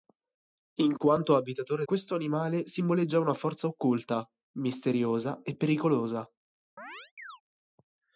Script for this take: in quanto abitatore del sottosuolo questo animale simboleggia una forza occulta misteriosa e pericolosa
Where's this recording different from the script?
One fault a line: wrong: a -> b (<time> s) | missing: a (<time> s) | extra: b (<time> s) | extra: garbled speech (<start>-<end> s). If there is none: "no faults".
missing: del sottosuolo (1.9 s)